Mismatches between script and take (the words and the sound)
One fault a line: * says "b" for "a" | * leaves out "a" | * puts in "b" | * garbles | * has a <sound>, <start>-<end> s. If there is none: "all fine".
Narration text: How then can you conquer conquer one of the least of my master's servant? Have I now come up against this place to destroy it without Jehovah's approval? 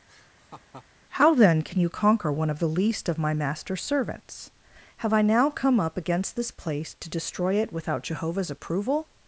* has a laugh, 0.1-0.9 s
* leaves out "conquer"
* says "servants" for "servant"